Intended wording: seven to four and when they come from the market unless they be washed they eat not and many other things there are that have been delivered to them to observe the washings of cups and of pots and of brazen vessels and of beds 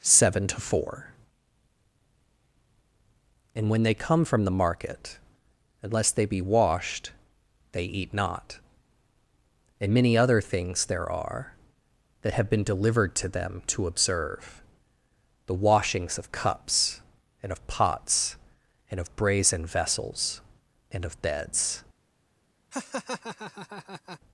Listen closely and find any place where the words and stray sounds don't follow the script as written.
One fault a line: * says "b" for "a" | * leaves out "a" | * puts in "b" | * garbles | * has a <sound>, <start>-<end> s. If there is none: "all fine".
* has a laugh, 22.7-24.2 s